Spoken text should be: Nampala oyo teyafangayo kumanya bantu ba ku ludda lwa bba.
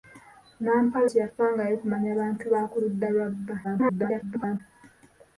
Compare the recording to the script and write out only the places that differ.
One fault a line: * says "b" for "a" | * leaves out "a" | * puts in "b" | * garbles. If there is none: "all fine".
* leaves out "oyo"
* garbles